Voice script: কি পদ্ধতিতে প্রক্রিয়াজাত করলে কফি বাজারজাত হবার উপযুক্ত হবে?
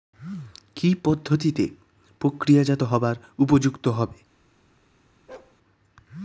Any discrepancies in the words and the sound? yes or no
yes